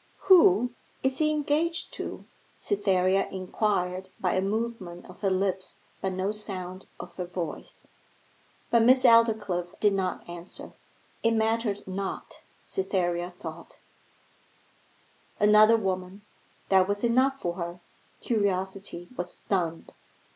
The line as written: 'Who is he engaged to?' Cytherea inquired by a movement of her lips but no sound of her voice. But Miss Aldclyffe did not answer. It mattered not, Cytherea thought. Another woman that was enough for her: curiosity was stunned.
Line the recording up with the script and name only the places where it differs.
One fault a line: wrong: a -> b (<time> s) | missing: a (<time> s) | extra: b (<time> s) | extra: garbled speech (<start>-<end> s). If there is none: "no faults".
no faults